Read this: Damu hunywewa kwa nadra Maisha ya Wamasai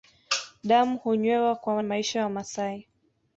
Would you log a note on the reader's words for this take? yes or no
yes